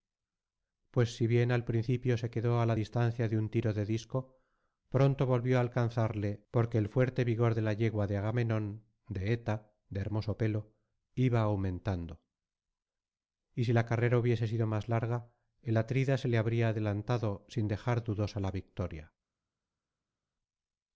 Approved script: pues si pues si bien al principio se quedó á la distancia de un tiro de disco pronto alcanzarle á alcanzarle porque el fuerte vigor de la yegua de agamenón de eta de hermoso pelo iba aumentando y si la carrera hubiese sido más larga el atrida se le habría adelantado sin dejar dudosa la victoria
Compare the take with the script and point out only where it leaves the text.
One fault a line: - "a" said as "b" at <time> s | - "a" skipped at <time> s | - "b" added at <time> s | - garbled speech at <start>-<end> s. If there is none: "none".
- "pues si" skipped at 1.3 s
- "alcanzarle" said as "volvió" at 5.3 s